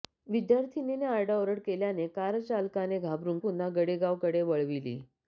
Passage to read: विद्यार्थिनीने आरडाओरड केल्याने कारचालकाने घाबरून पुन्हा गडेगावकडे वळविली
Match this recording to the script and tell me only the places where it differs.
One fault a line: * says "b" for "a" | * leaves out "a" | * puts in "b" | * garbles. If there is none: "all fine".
all fine